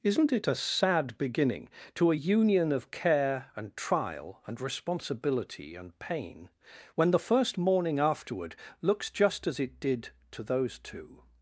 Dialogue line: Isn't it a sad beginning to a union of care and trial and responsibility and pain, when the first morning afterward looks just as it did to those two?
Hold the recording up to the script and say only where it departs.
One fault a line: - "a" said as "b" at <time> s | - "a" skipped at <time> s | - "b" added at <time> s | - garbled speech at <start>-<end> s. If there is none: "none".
none